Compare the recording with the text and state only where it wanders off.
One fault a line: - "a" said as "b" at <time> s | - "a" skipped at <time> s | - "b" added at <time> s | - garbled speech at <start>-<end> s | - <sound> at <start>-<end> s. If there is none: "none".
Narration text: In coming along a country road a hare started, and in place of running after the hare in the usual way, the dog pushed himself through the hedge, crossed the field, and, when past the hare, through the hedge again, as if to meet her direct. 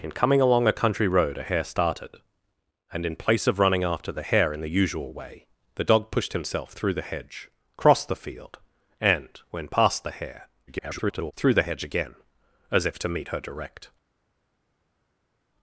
- garbled speech at 10.7-11.3 s